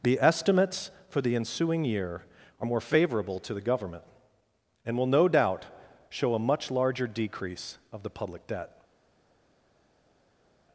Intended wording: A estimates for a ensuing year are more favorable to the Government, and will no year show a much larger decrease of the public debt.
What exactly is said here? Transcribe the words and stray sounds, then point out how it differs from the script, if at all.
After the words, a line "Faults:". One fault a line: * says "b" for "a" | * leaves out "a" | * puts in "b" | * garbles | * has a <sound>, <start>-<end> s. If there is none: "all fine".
The estimates for the ensuing year are more favorable to the Government, and will no doubt show a much larger decrease of the public debt.
Faults:
* says "The" for "A"
* says "the" for "a"
* says "doubt" for "year"